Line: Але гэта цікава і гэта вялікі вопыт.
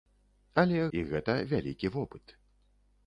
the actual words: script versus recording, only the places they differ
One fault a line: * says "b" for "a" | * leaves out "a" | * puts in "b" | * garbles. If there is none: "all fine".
* leaves out "гэта цікава"